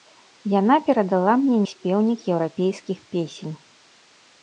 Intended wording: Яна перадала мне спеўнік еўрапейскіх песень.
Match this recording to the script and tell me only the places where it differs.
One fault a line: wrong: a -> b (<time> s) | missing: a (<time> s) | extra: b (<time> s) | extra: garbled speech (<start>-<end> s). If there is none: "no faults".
no faults